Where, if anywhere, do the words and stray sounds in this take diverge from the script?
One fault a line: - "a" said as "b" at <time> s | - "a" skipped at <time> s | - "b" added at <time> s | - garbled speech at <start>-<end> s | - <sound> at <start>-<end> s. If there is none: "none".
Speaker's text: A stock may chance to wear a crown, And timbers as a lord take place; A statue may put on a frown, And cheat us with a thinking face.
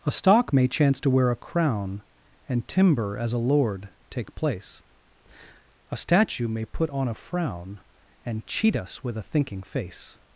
- "timbers" said as "timber" at 2.7 s